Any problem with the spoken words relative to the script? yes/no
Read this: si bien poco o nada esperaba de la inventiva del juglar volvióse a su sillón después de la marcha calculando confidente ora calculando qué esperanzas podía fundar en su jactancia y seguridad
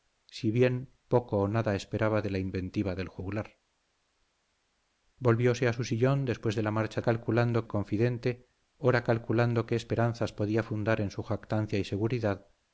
no